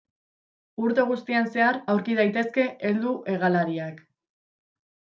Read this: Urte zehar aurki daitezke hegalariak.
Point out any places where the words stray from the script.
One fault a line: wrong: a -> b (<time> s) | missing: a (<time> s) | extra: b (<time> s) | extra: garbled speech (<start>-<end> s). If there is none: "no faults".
extra: guztian (1.1 s)
extra: heldu (2.9 s)